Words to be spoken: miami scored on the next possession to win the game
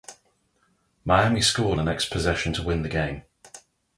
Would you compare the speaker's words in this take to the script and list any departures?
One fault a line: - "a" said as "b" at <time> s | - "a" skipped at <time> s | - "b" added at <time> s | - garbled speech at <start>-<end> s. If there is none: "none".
- "on" skipped at 1.8 s